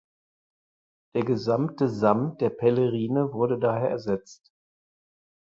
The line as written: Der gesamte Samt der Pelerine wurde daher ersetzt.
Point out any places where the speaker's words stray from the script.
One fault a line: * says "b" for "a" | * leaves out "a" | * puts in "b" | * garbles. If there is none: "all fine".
all fine